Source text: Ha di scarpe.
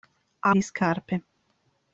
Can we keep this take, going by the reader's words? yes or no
yes